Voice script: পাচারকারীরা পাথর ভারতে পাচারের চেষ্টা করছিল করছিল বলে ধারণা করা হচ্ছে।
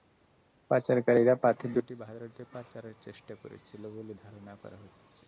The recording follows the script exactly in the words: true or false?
false